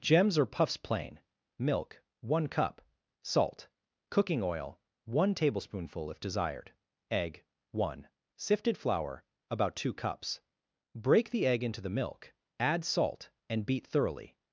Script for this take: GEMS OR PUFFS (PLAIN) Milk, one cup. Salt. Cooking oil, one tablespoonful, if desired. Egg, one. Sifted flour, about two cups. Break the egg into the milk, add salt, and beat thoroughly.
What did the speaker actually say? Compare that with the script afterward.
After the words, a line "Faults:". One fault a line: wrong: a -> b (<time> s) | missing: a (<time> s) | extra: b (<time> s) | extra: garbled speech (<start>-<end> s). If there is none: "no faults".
GEMS OR PUFFS (PLAIN) Milk, one cup. Salt. Cooking oil, one tablespoonful, if desired. Egg, one. Sifted flour, about two cups. Break the egg into the milk, add salt, and beat thoroughly.
Faults:
no faults